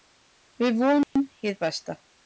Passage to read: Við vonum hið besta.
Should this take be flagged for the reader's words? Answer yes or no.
no